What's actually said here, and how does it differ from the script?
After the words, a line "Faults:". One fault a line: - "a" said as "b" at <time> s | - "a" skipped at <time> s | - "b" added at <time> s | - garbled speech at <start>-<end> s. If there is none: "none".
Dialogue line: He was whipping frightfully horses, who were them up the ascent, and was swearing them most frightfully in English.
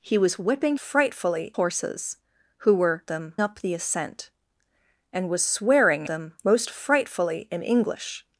He was whipping frightfully horses, who were them up the ascent, and was swearing them most frightfully in English.
Faults:
none